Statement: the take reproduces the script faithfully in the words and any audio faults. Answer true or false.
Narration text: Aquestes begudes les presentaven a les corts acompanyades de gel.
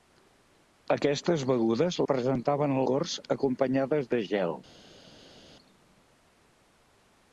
false